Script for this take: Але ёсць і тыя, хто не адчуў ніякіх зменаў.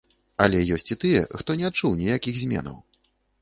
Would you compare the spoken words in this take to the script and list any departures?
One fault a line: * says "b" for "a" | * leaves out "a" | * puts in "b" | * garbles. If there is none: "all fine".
all fine